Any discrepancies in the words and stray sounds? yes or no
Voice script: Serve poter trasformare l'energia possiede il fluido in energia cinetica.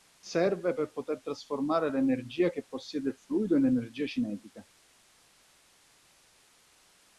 yes